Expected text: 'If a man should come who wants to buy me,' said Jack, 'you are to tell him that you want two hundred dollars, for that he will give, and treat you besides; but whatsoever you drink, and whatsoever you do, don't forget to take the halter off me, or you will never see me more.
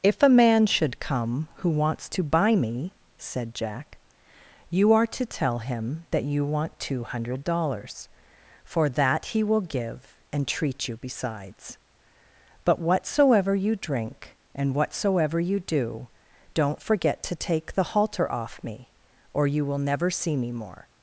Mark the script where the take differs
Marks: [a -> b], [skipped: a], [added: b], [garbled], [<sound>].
'If a man should come who wants to buy me,' said Jack, 'you are to tell him that you want two hundred dollars, for that he will give, and treat you besides; but whatsoever you drink, and whatsoever you do, don't forget to take the halter off me, or you will never see me more.